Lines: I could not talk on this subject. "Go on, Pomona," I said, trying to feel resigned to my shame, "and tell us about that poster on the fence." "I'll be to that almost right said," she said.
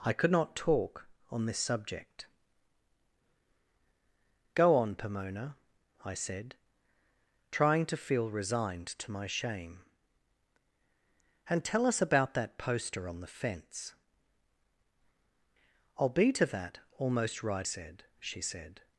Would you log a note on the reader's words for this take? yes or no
no